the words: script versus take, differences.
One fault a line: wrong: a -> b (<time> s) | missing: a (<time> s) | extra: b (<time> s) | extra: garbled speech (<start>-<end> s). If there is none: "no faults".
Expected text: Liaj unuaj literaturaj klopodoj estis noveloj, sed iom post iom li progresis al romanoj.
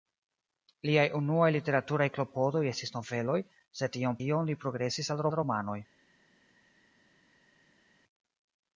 missing: post (4.2 s)
extra: al (5.3 s)